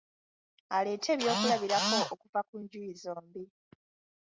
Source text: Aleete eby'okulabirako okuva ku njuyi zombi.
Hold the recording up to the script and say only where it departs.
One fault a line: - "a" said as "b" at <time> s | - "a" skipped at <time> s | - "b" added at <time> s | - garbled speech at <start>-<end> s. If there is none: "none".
none